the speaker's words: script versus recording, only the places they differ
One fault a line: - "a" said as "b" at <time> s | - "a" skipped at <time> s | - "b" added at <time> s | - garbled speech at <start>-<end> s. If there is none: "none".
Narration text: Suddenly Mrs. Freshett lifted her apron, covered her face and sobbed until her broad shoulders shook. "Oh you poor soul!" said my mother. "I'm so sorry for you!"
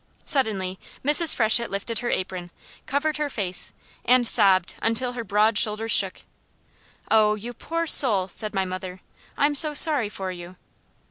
none